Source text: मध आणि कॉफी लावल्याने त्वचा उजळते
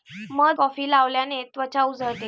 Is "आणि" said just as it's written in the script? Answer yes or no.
no